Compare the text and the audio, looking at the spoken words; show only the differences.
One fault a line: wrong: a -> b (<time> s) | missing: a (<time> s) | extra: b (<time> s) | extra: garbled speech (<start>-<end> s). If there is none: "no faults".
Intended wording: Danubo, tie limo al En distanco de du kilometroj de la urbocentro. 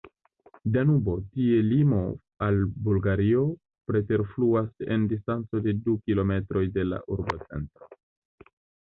extra: Bulgario preterfluas (2.9 s)